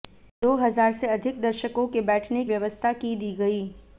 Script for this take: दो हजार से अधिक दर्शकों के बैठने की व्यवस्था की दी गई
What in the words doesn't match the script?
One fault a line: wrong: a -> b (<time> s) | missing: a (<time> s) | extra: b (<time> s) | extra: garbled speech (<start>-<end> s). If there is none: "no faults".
missing: की (2.4 s)